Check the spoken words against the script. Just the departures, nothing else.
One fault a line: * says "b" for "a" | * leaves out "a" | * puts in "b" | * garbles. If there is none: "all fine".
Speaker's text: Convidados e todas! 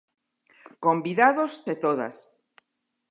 all fine